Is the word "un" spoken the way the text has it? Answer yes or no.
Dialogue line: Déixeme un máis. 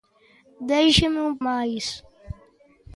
yes